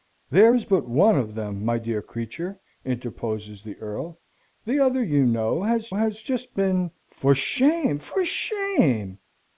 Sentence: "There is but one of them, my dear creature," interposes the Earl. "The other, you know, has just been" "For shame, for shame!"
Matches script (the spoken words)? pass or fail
fail